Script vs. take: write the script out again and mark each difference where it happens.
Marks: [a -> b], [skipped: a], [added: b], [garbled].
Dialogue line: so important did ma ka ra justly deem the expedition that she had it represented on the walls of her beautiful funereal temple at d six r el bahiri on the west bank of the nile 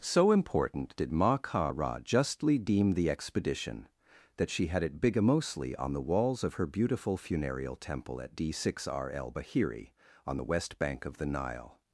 so important did ma ka ra justly deem the expedition that she had it [represented -> bigamously] on the walls of her beautiful funereal temple at d six r el bahiri on the west bank of the nile